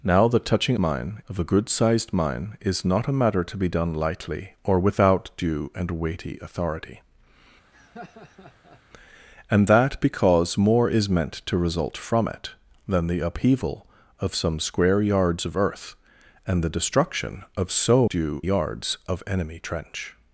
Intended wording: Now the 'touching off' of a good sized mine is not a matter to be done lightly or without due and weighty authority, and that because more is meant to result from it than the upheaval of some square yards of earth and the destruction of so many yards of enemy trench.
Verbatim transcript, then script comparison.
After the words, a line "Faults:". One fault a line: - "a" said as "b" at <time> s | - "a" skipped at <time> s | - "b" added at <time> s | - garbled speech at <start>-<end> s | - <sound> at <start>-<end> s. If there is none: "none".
Now the 'touching mine' of a good sized mine is not a matter to be done lightly or without due and weighty authority, and that because more is meant to result from it than the upheaval of some square yards of earth and the destruction of so due yards of enemy trench.
Faults:
- "off" said as "mine" at 0.8 s
- laugh at 7.7-8.8 s
- "many" said as "due" at 18.1 s